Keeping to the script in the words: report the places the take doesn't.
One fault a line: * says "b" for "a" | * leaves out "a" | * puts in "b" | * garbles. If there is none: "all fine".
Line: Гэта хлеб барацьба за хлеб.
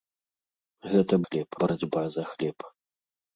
all fine